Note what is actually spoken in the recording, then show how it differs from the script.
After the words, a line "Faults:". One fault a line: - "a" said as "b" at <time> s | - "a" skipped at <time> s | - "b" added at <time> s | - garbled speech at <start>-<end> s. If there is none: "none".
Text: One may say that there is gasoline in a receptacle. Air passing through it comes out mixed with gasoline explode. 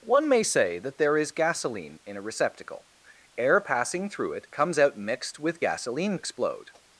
One may say that there is gasoline in a receptacle. Air passing through it comes out mixed with gasoline explode.
Faults:
none